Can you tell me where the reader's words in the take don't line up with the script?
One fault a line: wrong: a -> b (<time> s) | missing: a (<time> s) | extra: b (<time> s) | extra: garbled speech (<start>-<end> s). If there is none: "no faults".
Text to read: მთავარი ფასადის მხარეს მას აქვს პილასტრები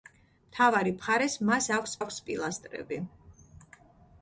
missing: ფასადის (0.9 s)
extra: აქვს (2.0 s)